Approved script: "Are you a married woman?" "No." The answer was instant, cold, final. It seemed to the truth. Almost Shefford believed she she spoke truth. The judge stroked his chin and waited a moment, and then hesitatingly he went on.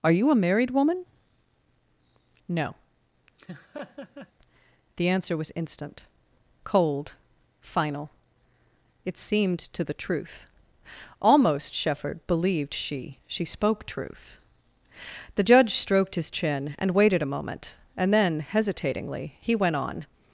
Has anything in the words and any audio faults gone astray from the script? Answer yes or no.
yes